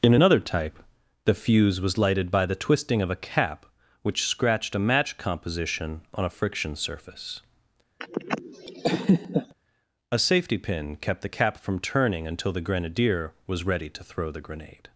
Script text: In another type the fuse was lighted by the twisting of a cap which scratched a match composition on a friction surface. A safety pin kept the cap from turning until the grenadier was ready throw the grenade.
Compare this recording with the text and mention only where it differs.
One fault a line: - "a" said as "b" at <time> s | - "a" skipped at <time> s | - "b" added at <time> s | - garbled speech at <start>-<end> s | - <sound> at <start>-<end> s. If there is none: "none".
- laugh at 8.0-9.5 s
- "to" added at 13.9 s